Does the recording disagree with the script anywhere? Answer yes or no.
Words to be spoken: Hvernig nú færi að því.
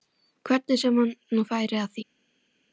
yes